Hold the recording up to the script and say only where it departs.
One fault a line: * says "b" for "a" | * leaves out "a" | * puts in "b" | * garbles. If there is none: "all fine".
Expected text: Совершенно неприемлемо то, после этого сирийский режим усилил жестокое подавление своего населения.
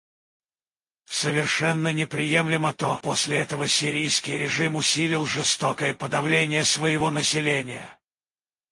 all fine